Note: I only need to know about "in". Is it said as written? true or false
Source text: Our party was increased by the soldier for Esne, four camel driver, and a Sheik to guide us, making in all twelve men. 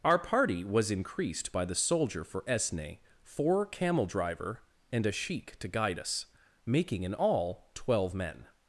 true